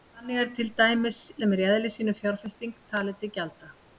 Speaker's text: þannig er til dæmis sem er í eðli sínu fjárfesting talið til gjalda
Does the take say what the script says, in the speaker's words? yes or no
yes